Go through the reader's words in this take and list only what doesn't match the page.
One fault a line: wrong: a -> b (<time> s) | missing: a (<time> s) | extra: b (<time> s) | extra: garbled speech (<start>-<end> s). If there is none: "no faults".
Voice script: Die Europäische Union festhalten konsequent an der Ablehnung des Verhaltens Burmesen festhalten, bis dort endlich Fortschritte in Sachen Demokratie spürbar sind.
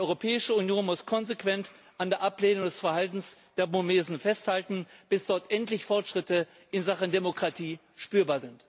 wrong: festhalten -> muss (0.9 s)
extra: der (3.6 s)